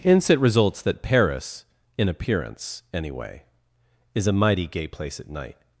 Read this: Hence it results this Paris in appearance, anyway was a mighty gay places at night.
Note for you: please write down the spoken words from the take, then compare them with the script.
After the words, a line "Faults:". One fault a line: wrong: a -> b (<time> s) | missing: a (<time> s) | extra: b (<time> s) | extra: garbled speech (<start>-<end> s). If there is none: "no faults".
Hence it results that Paris in appearance, anyway is a mighty gay place at night.
Faults:
wrong: this -> that (0.8 s)
wrong: was -> is (4.2 s)
wrong: places -> place (4.9 s)